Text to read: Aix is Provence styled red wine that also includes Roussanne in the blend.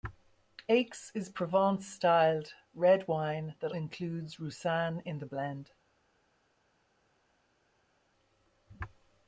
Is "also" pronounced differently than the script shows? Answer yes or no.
yes